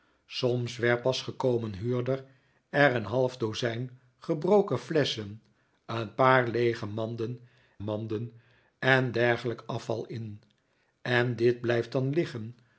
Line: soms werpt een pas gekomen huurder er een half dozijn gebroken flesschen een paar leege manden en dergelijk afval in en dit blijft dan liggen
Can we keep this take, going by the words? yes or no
no